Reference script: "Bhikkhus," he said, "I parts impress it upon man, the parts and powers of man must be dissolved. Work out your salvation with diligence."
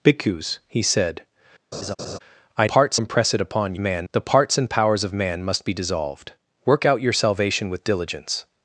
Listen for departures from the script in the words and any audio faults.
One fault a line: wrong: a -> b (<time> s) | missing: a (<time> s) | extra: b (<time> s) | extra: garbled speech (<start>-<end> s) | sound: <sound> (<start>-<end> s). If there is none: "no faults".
sound: laugh (1.7-2.2 s)